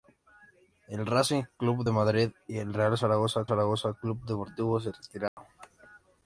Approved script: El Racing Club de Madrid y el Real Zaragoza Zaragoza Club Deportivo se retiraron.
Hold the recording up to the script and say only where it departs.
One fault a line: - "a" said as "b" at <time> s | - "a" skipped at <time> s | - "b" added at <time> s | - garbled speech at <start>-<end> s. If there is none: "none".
none